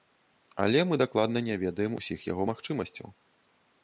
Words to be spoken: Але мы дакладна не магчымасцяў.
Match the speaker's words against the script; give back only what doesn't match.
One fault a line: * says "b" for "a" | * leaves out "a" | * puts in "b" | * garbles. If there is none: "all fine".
* puts in "ведаем усіх яго"